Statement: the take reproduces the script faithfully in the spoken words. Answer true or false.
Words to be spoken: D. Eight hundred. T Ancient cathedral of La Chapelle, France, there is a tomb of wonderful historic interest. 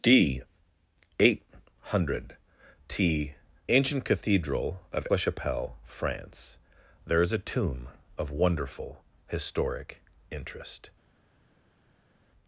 true